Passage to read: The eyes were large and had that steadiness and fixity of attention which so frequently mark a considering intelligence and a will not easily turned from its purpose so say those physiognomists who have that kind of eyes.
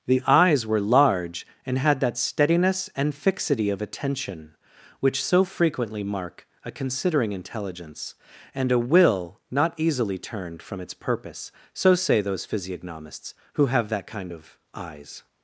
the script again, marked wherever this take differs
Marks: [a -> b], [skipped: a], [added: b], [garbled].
The eyes were large and had that steadiness and fixity of attention which so frequently mark a considering intelligence and a will not easily turned from its purpose so say those physiognomists who have that kind of eyes.